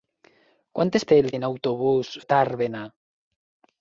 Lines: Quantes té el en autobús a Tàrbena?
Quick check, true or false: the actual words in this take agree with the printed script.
true